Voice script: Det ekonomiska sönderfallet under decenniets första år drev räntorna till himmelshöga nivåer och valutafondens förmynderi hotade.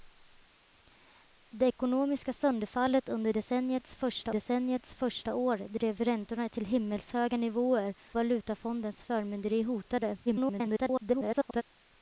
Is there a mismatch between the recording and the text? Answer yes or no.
yes